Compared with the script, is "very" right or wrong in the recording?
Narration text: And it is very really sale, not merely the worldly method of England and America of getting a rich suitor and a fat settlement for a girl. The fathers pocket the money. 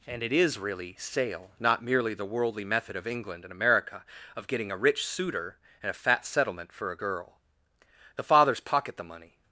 wrong